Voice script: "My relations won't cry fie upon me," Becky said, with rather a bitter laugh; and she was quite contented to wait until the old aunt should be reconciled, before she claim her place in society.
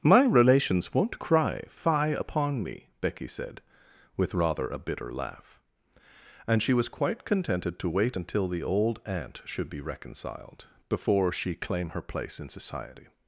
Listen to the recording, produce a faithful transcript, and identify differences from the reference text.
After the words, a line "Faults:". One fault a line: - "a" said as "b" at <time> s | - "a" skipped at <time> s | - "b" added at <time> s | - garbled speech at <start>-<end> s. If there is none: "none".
"My relations won't cry fie upon me," Becky said, with rather a bitter laugh; and she was quite contented to wait until the old aunt should be reconciled, before she claim her place in society.
Faults:
none